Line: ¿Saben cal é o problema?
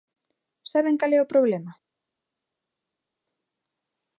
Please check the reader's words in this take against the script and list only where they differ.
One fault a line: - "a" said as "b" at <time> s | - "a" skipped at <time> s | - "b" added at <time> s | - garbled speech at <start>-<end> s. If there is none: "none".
none